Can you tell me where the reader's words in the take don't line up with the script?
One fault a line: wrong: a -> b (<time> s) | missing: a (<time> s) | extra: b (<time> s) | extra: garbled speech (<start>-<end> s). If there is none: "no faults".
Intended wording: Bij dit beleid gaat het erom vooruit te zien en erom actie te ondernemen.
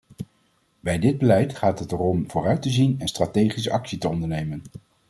wrong: erom -> strategische (3.1 s)